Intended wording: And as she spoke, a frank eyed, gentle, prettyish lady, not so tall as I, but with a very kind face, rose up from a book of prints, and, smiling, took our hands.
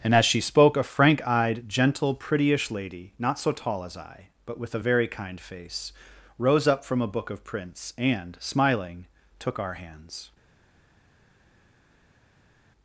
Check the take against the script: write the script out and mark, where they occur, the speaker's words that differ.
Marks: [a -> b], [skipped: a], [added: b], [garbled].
And as she spoke, a frank eyed, gentle, prettyish lady, not so tall as I, but with a very kind face, rose up from a book of prints, and, smiling, took our hands.